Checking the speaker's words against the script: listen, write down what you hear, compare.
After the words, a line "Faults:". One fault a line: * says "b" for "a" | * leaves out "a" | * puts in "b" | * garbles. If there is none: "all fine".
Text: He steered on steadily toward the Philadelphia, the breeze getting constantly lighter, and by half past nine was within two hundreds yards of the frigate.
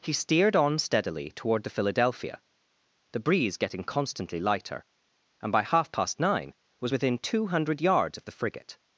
He steered on steadily toward the Philadelphia, the breeze getting constantly lighter, and by half past nine was within two hundred yards of the frigate.
Faults:
* says "hundred" for "hundreds"